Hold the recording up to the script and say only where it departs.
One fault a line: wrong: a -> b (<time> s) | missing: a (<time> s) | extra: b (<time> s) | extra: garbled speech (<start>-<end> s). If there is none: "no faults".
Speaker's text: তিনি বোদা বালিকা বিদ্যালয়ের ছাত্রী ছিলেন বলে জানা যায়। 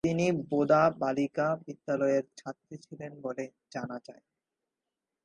no faults